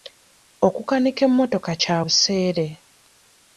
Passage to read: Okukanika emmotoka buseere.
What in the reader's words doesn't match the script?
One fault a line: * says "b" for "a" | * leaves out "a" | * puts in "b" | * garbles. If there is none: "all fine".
* puts in "kya"